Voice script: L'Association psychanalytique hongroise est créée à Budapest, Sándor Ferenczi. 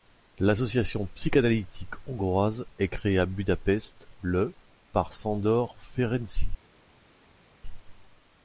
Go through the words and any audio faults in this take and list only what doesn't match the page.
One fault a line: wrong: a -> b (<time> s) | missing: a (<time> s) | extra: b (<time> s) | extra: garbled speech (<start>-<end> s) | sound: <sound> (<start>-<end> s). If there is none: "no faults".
extra: le par (4.2 s)